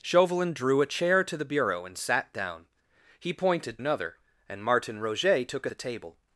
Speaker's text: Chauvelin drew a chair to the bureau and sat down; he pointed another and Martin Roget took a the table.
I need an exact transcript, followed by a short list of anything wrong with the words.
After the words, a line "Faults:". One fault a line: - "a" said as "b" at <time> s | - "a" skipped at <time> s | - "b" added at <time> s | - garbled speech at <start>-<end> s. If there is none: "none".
Chauvelin drew a chair to the bureau and sat down; he pointed another and Martin Roget took a the table.
Faults:
none